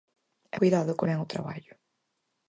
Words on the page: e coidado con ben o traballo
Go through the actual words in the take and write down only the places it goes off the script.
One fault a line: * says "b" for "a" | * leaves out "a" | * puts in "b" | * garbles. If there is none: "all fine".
all fine